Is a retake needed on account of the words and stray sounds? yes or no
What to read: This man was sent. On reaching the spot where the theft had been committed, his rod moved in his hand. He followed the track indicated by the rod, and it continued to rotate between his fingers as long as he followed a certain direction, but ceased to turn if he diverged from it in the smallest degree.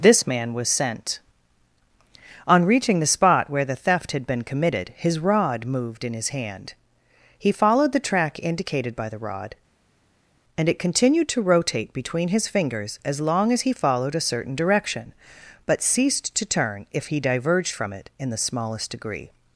no